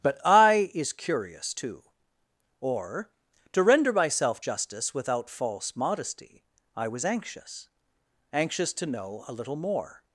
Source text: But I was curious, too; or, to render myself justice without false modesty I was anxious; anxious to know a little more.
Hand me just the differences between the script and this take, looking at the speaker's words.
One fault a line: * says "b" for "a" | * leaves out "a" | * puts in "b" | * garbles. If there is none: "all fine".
* says "is" for "was"